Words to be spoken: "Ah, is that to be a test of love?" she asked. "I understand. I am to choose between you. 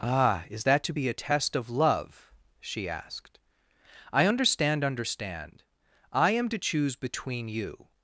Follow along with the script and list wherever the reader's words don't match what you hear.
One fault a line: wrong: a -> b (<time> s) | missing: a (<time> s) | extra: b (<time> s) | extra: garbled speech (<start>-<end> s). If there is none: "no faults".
extra: understand (4.8 s)